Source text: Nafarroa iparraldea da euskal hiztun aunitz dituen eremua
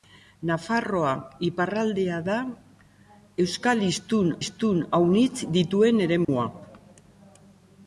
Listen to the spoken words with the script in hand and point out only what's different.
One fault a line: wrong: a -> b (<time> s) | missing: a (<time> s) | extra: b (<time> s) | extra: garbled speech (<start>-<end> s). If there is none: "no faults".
extra: hiztun (4.4 s)